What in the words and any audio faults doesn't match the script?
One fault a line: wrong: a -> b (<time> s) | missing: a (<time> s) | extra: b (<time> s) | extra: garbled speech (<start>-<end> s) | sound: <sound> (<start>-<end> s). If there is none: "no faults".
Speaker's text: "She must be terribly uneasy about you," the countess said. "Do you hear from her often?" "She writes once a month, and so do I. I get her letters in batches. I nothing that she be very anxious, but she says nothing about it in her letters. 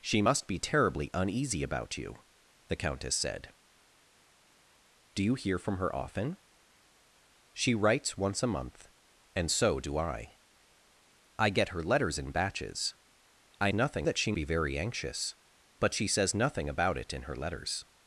no faults